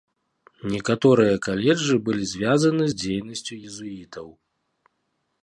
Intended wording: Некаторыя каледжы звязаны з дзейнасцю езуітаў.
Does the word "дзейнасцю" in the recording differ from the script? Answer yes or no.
no